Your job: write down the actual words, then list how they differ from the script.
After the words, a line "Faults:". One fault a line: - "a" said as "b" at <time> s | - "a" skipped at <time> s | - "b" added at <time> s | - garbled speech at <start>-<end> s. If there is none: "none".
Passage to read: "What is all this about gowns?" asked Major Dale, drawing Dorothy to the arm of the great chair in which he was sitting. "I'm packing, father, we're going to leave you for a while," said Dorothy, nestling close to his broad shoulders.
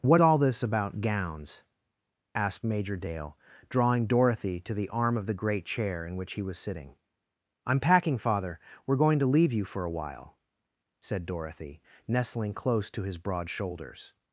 "What all this about gowns?" asked Major Dale, drawing Dorothy to the arm of the great chair in which he was sitting. "I'm packing, father, we're going to leave you for a while," said Dorothy, nestling close to his broad shoulders.
Faults:
- "is" skipped at 0.2 s